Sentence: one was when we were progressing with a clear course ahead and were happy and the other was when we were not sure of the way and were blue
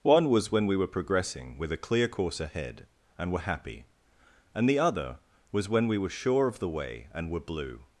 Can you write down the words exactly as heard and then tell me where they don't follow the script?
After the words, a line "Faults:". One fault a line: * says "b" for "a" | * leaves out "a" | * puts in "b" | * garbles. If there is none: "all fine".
one was when we were progressing with a clear course ahead and were happy and the other was when we were sure of the way and were blue
Faults:
* leaves out "not"